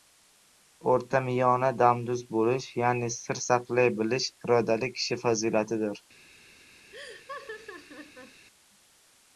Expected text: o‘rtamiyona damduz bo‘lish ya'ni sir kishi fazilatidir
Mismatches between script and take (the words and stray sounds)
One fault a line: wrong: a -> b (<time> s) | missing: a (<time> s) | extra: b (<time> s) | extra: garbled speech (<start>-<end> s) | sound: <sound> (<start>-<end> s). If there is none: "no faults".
extra: saqlay bilish irodali (3.5 s)
sound: laugh (6.9-8.5 s)